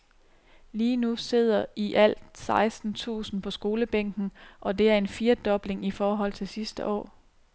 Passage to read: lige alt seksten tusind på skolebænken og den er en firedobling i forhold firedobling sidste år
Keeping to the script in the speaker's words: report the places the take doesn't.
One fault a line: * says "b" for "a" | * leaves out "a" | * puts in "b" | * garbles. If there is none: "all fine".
* puts in "nu sidder i"
* says "det" for "den"
* says "til" for "firedobling"